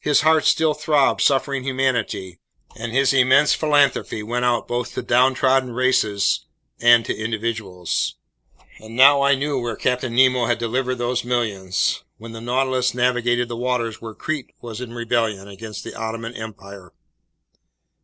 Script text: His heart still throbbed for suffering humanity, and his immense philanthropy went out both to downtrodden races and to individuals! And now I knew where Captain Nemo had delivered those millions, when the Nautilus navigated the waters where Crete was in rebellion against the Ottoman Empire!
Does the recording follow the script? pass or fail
fail